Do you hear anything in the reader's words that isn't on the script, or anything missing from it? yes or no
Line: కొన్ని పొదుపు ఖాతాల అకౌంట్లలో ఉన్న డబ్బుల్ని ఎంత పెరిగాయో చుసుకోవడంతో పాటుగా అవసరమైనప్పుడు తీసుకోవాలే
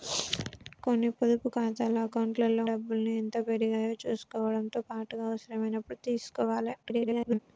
yes